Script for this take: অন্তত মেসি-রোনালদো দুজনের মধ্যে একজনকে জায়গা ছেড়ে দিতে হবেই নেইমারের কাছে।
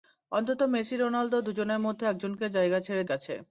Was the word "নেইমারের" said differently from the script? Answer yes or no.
yes